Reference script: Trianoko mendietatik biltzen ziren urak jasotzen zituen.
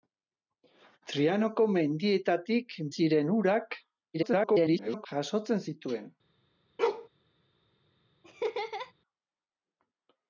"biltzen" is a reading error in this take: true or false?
true